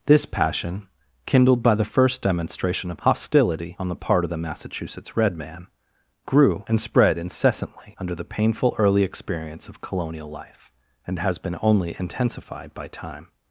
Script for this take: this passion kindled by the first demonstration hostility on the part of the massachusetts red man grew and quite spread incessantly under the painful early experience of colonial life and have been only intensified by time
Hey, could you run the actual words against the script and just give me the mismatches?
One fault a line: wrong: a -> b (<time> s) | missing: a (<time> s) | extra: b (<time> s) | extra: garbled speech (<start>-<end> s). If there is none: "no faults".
extra: of (2.9 s)
missing: quite (6.8 s)
wrong: have -> has (11.2 s)